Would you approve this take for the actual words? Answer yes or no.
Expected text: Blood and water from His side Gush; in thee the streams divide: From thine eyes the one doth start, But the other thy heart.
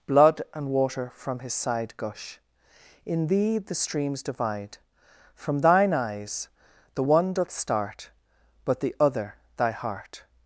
yes